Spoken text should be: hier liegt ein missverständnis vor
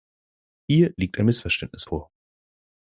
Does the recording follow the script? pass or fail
pass